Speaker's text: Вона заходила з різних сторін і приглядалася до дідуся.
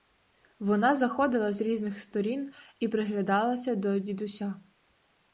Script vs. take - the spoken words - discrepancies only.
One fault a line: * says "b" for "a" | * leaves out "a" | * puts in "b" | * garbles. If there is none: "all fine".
all fine